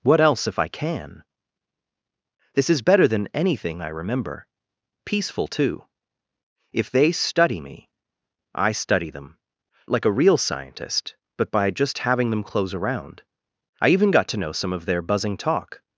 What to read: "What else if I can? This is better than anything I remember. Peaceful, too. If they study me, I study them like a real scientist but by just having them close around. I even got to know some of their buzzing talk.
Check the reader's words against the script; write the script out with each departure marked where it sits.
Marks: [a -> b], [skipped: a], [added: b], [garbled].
"What else if I can? This is better than anything I remember. Peaceful, too. If they study me, I study them like a real scientist but by just having them close around. I even got to know some of their buzzing talk.